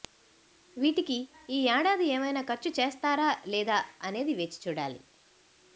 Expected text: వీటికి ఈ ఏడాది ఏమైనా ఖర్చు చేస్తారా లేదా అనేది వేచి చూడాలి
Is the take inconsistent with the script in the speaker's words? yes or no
no